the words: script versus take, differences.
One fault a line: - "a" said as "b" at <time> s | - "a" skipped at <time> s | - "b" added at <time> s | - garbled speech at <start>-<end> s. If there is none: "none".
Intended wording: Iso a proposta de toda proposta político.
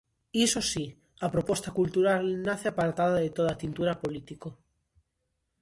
- "si" added at 0.7 s
- "cultural nace apartada" added at 1.8 s
- "proposta" said as "tintura" at 3.6 s